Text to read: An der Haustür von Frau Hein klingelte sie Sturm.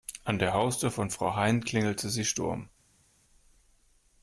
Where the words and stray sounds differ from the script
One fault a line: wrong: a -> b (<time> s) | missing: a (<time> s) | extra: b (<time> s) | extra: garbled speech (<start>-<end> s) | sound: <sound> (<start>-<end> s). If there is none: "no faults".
no faults